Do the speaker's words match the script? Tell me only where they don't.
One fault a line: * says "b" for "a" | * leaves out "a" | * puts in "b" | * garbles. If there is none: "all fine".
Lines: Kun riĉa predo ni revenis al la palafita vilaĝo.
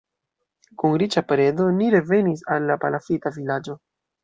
all fine